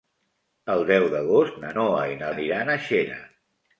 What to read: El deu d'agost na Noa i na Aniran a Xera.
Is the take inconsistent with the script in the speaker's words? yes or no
no